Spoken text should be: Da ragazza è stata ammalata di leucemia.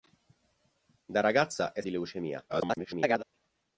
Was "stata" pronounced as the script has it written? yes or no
no